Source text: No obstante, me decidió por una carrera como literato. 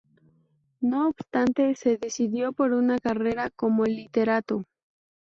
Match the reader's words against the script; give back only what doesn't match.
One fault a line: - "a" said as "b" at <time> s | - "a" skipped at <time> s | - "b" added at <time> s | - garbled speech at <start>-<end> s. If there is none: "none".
- "me" said as "se" at 1.7 s